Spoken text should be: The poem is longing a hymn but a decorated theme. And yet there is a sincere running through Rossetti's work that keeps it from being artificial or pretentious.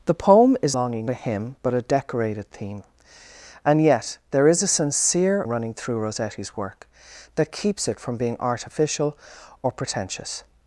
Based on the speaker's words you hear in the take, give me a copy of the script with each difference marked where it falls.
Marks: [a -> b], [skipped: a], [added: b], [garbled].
The poem is longing a hymn but a decorated theme. And yet there is a sincere running through Rossetti's work that keeps it from being artificial or pretentious.